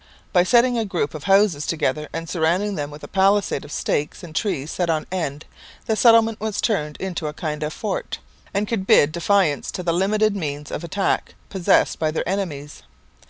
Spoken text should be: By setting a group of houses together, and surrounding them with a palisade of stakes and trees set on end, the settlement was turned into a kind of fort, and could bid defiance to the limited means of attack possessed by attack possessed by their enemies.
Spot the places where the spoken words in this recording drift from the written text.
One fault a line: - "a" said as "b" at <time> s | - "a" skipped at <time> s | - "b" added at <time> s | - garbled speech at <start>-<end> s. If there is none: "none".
- "attack possessed by" skipped at 12.1 s